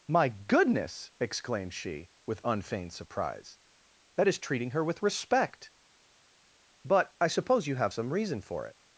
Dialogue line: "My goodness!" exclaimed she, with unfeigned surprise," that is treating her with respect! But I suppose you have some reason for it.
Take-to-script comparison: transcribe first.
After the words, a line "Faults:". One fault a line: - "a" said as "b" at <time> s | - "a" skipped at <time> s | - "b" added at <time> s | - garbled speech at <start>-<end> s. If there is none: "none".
"My goodness!" exclaimed she, with unfeigned surprise," that is treating her with respect! But I suppose you have some reason for it.
Faults:
none